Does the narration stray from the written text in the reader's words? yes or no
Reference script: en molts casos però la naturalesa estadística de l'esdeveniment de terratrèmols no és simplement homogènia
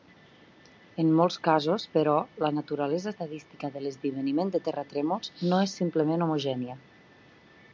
no